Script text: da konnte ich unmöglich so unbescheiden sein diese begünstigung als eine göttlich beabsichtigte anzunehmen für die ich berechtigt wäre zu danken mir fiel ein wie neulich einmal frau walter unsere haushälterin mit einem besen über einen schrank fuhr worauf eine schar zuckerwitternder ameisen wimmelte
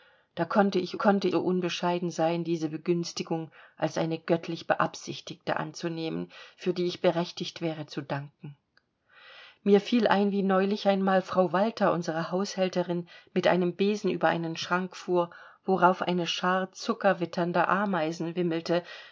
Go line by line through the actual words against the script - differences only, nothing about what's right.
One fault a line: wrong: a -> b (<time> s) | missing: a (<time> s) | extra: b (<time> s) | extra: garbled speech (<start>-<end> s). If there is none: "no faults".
wrong: unmöglich -> konnte (0.9 s)